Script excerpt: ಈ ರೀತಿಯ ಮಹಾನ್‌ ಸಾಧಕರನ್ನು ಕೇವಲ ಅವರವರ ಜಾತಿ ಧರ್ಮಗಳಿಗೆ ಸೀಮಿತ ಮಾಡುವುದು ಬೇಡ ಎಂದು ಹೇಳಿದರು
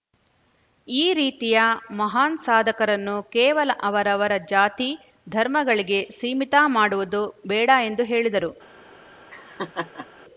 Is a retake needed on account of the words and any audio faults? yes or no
yes